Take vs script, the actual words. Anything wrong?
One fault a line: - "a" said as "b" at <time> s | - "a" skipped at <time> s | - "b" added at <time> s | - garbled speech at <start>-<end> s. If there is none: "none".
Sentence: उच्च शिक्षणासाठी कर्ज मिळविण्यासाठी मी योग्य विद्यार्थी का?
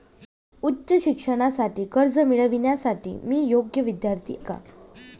none